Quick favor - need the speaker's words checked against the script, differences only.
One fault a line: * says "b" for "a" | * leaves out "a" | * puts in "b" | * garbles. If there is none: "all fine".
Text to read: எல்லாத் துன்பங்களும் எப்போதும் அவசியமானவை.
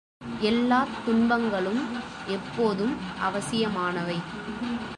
all fine